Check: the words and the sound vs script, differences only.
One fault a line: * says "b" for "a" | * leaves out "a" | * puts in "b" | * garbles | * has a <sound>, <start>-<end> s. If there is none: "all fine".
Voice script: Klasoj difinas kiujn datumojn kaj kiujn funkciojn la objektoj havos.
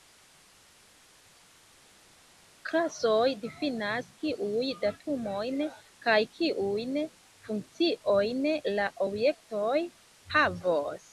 all fine